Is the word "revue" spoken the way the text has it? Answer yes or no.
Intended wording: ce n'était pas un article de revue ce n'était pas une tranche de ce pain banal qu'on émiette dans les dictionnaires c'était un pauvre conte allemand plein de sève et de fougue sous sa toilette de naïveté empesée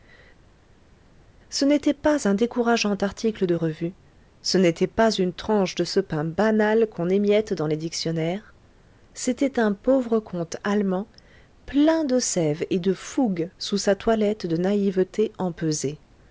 yes